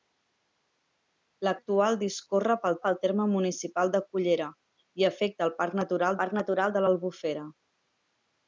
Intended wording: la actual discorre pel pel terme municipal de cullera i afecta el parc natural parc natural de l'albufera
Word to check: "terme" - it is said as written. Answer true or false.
true